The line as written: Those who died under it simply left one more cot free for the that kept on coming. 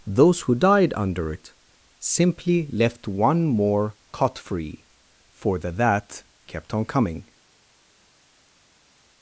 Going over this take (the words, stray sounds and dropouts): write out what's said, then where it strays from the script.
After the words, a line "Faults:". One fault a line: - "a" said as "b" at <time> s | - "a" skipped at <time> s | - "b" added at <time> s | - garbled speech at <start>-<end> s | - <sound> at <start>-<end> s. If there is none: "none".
Those who died under it simply left one more cot free for the that kept on coming.
Faults:
none